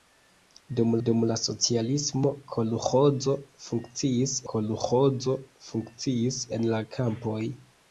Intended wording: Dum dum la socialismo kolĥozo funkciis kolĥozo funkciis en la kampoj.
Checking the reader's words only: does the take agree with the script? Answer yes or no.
yes